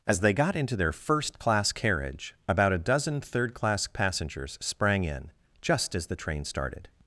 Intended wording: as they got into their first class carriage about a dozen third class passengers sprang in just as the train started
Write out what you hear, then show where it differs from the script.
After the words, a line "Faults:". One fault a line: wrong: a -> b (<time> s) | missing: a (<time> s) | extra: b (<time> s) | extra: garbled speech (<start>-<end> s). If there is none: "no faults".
as they got into their first class carriage about a dozen third class passengers sprang in just as the train started
Faults:
no faults